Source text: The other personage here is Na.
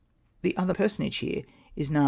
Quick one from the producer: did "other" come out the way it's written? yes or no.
yes